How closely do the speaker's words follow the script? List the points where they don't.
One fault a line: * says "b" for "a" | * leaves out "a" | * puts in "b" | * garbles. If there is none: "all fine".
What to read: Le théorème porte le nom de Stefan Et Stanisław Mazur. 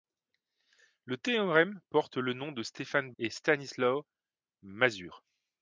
all fine